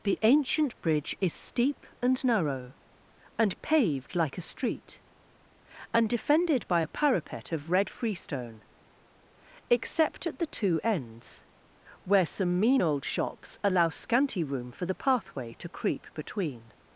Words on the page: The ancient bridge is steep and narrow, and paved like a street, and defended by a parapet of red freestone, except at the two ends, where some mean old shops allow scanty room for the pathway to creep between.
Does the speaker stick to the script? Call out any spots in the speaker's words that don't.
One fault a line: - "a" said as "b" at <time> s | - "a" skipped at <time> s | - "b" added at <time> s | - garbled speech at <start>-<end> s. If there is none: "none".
none